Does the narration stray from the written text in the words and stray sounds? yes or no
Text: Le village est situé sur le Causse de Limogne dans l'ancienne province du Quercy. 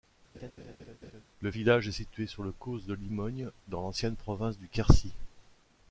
yes